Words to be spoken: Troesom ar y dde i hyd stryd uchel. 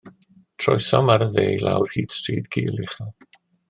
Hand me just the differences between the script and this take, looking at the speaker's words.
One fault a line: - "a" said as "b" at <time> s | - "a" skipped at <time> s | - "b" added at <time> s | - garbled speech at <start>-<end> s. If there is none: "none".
- "lawr" added at 1.7 s
- "gul" added at 2.6 s